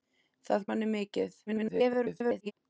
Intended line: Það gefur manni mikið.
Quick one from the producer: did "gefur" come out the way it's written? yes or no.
no